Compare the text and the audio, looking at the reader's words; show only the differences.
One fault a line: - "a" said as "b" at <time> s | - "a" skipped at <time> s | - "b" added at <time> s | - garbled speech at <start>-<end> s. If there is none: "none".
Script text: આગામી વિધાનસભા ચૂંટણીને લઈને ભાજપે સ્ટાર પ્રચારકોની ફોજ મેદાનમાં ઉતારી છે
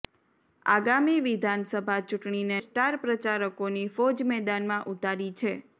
- "લઈને ભાજપે" skipped at 2.6 s